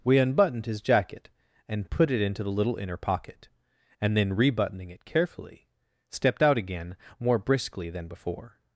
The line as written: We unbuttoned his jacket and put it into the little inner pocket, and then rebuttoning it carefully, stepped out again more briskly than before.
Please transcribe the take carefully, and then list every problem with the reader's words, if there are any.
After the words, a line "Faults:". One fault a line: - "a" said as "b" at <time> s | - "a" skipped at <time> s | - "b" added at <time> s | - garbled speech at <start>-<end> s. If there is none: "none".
We unbuttoned his jacket and put it into the little inner pocket, and then rebuttoning it carefully, stepped out again more briskly than before.
Faults:
none